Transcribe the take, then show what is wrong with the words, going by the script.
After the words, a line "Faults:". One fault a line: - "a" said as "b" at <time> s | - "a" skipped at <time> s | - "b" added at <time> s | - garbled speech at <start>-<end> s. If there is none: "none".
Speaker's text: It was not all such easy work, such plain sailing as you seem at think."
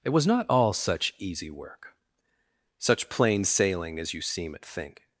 It was not all such easy work, such plain sailing as you seem at think."
Faults:
none